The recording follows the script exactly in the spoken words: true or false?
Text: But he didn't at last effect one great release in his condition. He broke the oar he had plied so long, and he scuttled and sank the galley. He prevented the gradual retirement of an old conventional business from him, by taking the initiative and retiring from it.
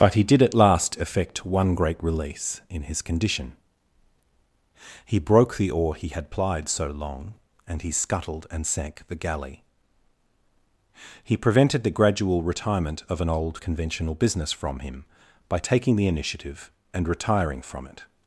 false